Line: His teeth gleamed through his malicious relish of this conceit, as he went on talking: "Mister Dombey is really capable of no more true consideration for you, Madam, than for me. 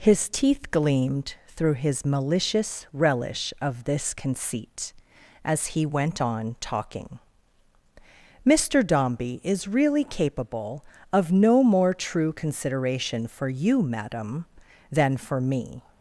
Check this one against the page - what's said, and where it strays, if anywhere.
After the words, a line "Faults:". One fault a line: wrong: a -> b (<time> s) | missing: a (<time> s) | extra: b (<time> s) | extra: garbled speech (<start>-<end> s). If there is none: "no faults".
His teeth gleamed through his malicious relish of this conceit, as he went on talking: "Mister Dombey is really capable of no more true consideration for you, Madam, than for me.
Faults:
no faults